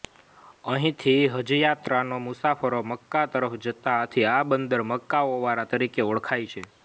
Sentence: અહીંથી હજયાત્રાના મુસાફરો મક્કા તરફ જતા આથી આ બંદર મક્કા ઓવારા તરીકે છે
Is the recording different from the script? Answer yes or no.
yes